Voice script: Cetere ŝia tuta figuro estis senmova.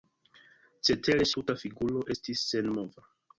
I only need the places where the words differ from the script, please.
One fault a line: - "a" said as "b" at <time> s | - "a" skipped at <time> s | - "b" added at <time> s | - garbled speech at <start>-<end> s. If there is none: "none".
- "ŝia" skipped at 1.3 s